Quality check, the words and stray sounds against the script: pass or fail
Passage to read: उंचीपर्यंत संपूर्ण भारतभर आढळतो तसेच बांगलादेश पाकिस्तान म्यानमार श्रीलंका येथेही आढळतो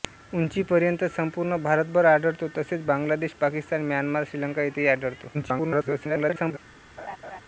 fail